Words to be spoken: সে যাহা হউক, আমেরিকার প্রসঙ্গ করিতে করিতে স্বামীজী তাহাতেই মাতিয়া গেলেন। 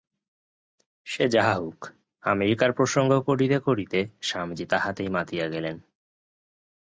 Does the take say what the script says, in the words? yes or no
yes